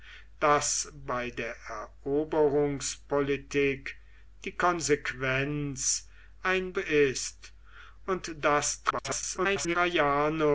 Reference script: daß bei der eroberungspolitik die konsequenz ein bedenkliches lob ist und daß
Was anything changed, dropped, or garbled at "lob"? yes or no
yes